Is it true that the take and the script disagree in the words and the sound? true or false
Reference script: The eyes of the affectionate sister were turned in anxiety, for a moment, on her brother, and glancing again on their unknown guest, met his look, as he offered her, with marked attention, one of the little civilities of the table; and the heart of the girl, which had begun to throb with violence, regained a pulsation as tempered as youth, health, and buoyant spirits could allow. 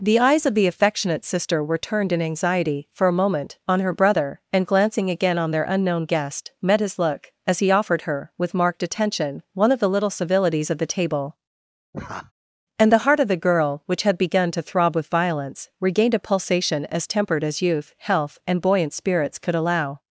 true